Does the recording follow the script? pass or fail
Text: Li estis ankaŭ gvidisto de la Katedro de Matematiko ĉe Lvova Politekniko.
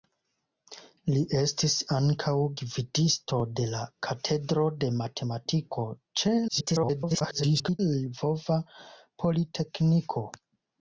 fail